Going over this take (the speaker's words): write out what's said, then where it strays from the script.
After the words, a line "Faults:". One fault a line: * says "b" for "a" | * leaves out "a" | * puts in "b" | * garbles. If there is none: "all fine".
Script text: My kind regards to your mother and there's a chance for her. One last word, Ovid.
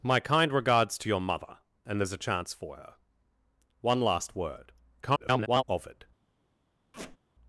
My kind regards to your mother and there's a chance for her. One last word, [garbled] Ovid.
Faults:
* garbles